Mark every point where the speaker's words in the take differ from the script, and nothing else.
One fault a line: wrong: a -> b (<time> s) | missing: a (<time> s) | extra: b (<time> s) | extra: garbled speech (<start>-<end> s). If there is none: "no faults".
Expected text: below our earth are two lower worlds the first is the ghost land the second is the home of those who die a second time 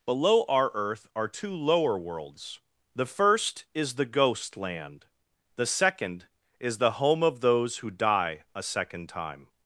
no faults